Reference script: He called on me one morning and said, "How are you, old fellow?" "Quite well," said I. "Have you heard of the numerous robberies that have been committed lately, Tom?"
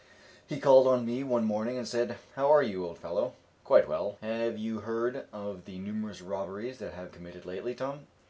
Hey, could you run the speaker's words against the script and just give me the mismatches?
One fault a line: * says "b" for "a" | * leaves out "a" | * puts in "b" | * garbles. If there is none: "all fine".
* leaves out "said I"
* leaves out "been"